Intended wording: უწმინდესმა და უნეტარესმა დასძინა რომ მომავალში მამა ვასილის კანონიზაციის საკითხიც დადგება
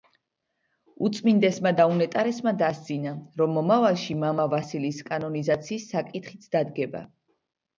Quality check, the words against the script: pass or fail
pass